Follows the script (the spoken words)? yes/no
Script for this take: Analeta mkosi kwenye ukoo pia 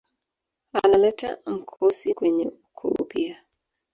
yes